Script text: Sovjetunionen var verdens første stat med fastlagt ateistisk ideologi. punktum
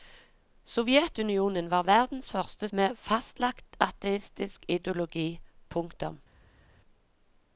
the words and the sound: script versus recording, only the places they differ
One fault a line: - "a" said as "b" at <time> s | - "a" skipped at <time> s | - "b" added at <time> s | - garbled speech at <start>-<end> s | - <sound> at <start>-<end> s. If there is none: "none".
- "stat" skipped at 2.7 s